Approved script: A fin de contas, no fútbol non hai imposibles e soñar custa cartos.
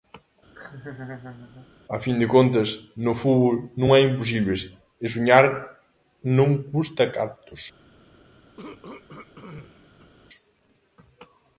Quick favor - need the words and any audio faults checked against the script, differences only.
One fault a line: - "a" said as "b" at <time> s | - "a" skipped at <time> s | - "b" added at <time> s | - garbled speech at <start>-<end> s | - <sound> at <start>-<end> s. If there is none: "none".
- laugh at 0.5-1.7 s
- "non" added at 6.4 s
- throat clearing at 8.6-10.1 s